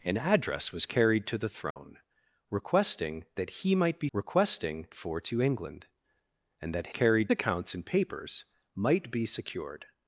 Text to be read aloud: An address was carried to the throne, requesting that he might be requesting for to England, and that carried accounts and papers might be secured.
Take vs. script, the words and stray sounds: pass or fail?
fail